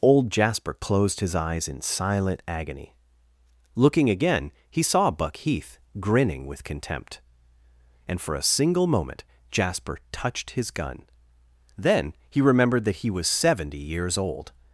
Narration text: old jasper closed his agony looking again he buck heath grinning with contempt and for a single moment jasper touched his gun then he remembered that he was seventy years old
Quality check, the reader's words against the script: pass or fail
fail